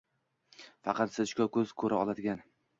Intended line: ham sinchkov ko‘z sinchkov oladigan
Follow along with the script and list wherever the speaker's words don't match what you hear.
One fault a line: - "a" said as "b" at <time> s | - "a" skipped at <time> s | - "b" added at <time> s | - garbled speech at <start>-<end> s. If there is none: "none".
- "ham" said as "faqat" at 0.9 s
- "sinchkov" said as "ko‘ra" at 1.9 s